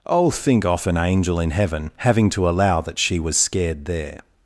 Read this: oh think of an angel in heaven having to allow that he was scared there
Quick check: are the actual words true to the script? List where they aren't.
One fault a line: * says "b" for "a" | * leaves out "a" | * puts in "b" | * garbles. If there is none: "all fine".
* says "off" for "of"
* says "she" for "he"